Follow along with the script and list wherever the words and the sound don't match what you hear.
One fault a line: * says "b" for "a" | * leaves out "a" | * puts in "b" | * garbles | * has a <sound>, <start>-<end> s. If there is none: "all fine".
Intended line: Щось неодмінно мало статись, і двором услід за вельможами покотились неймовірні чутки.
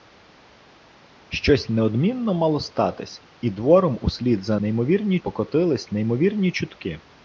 * says "неймовірні" for "вельможами"